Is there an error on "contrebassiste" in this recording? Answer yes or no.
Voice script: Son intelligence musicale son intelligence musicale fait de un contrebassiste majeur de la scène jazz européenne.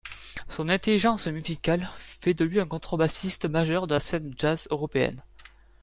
no